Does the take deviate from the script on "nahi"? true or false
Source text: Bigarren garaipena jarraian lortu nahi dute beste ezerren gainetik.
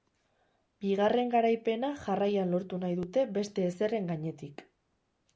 false